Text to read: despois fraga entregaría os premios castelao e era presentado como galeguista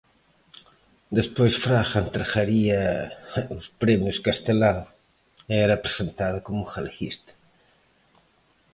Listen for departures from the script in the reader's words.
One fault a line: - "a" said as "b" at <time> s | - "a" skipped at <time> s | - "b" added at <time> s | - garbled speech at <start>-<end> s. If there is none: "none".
none